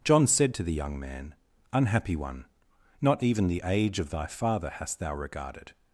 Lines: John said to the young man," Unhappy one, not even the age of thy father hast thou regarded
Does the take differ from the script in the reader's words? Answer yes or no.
no